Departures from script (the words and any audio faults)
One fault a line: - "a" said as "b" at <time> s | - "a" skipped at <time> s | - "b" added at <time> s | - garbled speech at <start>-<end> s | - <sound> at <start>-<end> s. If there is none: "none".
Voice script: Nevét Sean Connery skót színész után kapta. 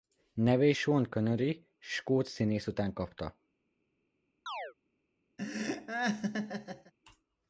- chirp at 4.5-4.7 s
- laugh at 5.4-6.9 s